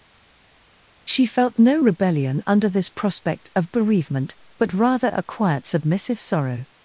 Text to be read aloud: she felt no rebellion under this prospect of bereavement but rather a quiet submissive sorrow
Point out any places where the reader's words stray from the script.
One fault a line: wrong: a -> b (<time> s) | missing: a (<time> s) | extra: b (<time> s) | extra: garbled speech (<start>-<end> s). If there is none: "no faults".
no faults